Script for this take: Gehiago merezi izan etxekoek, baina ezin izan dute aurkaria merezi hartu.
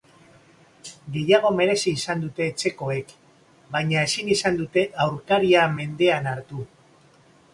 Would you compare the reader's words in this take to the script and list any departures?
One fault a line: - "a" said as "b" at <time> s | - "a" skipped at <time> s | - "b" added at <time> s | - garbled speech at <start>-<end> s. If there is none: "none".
- "dute" added at 2.2 s
- "merezi" said as "mendean" at 5.8 s